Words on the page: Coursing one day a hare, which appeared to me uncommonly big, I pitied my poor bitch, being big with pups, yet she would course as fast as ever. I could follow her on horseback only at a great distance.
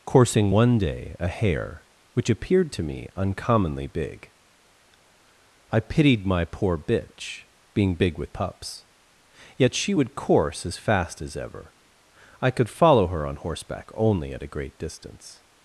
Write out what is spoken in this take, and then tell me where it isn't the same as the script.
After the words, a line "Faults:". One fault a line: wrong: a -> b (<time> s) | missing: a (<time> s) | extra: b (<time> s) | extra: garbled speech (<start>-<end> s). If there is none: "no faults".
Coursing one day a hare, which appeared to me uncommonly big, I pitied my poor bitch, being big with pups, yet she would course as fast as ever. I could follow her on horseback only at a great distance.
Faults:
no faults